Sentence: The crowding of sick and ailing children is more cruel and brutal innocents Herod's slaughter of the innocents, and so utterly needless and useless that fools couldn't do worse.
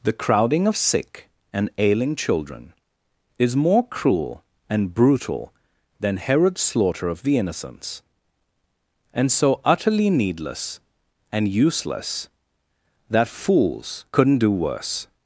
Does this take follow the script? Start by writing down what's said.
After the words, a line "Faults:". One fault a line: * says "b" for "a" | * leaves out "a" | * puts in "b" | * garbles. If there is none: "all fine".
The crowding of sick and ailing children is more cruel and brutal than Herod's slaughter of the innocents, and so utterly needless and useless that fools couldn't do worse.
Faults:
* says "than" for "innocents"